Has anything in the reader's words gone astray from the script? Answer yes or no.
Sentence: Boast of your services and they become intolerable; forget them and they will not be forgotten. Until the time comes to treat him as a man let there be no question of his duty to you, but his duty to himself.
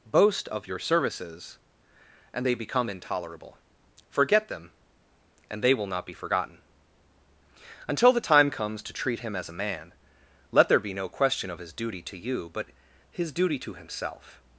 no